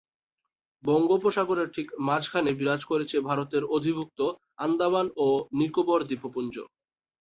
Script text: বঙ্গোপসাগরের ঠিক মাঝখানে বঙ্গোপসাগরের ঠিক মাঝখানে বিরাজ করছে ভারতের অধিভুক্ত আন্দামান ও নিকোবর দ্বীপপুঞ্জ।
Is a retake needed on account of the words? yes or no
yes